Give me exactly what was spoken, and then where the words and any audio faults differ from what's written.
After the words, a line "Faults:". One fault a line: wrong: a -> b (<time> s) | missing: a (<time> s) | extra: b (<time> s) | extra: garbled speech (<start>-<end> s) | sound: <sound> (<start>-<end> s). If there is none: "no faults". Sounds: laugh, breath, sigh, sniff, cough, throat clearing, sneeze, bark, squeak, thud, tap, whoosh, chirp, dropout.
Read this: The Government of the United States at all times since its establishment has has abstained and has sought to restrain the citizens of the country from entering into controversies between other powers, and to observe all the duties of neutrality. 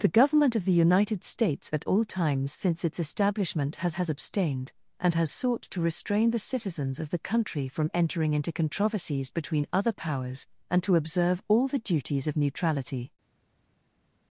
The Government of the United States at all times since its establishment has has abstained and has sought to restrain the citizens of the country from entering into controversies between other powers, and to observe all the duties of neutrality.
Faults:
no faults